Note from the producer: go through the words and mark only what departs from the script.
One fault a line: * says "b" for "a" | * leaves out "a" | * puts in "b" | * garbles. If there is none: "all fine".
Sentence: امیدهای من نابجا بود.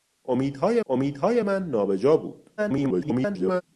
* puts in "امیدهای"
* garbles